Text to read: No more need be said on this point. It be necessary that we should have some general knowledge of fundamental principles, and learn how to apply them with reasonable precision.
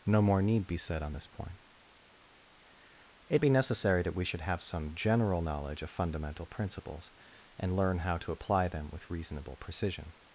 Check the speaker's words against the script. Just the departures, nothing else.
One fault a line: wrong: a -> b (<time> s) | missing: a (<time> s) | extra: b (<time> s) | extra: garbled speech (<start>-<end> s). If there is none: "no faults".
no faults